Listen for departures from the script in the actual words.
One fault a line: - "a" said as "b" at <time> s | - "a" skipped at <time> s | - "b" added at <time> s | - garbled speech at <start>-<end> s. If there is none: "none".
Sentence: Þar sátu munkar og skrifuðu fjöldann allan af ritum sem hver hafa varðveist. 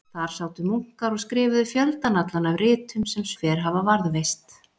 none